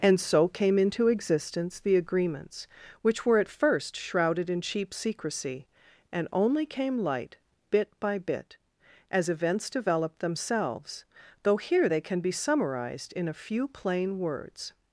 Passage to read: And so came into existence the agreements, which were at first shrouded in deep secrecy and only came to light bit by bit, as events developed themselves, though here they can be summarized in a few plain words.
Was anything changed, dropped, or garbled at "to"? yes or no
yes